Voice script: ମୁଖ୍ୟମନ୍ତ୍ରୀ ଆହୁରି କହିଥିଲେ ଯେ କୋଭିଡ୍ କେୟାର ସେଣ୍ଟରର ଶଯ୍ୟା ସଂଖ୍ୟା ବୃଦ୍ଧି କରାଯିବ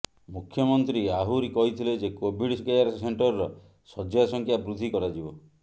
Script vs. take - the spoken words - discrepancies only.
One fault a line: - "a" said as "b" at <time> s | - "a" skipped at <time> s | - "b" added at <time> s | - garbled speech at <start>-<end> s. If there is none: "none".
none